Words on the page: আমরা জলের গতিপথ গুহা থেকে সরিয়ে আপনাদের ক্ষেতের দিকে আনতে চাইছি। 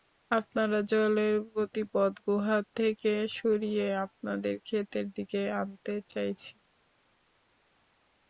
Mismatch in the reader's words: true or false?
false